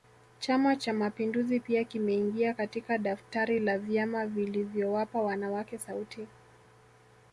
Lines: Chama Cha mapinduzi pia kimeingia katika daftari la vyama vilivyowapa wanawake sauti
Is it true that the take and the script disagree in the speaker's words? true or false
false